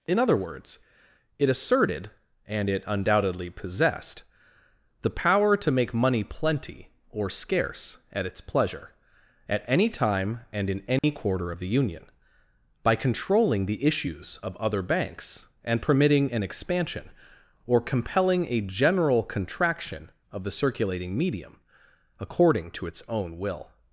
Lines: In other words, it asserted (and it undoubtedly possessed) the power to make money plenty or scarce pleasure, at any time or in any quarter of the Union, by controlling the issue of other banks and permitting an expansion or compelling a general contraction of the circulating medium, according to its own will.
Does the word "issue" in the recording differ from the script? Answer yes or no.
yes